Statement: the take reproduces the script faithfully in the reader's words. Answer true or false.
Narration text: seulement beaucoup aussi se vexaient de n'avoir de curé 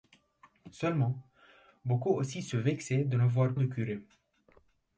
true